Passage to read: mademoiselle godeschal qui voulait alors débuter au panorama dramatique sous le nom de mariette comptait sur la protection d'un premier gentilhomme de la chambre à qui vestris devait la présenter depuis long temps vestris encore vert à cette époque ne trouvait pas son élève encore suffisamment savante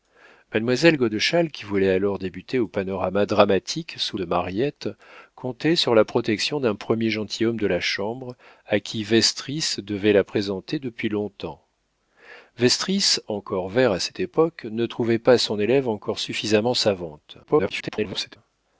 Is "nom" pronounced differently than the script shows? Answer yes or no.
yes